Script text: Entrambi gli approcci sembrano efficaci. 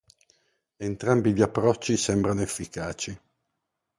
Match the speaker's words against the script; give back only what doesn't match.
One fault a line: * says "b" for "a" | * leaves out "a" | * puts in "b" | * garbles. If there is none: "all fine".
all fine